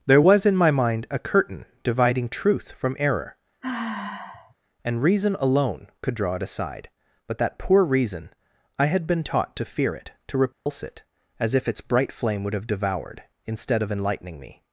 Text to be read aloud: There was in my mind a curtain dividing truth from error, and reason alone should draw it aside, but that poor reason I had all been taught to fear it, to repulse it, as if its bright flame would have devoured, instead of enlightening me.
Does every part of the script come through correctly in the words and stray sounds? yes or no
no